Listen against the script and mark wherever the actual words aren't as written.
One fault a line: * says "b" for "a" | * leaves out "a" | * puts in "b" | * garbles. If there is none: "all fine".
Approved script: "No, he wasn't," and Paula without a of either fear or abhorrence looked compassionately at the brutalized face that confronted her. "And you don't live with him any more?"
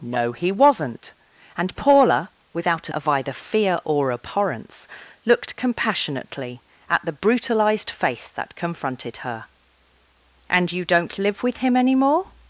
all fine